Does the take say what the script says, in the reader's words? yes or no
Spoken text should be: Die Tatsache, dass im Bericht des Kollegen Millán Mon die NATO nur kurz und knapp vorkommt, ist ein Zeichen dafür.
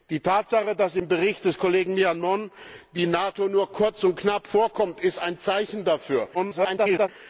no